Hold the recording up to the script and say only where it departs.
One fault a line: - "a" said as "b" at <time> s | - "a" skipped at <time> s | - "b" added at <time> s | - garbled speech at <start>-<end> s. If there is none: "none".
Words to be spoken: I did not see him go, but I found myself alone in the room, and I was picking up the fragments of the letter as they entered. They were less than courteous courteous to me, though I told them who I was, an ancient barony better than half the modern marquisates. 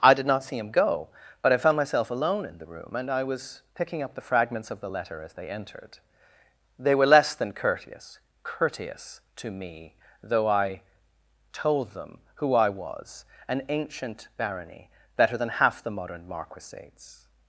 none